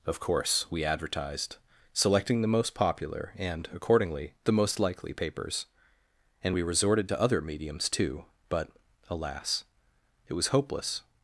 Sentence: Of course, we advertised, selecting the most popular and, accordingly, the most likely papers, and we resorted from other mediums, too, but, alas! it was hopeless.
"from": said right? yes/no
no